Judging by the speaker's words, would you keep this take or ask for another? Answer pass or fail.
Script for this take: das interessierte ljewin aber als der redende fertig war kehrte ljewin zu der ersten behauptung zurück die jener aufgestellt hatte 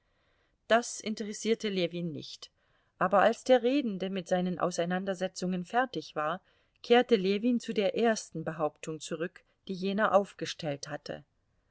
fail